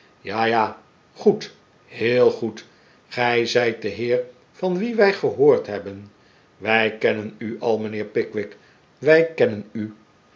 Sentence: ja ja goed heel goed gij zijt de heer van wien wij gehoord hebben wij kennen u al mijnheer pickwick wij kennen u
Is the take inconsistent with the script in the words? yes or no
no